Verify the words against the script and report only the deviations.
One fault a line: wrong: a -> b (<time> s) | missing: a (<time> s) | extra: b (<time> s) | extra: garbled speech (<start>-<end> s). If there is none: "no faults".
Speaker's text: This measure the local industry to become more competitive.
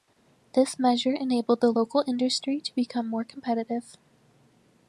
extra: enabled (1.1 s)